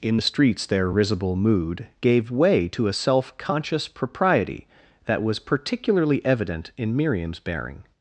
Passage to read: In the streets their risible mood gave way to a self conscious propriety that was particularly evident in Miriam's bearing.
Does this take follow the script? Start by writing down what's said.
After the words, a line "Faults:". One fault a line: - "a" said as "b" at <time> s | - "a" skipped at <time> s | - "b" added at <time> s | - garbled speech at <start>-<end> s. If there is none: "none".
In the streets their risible mood gave way to a self conscious propriety that was particularly evident in Miriam's bearing.
Faults:
none